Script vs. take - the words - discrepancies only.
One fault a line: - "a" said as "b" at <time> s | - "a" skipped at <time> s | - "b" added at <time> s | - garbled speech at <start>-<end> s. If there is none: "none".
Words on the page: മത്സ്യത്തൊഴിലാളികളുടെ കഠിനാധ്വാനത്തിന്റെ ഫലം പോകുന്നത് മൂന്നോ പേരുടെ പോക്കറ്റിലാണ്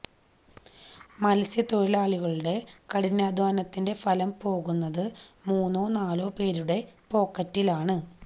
- "നാലോ" added at 6.0 s